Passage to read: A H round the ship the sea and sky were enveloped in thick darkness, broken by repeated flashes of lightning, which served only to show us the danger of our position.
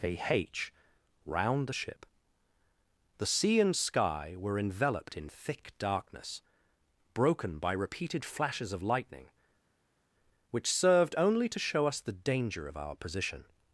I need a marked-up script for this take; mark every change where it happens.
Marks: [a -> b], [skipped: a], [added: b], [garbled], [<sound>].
A H round the ship the sea and sky were enveloped in thick darkness, broken by repeated flashes of lightning, which served only to show us the danger of our position.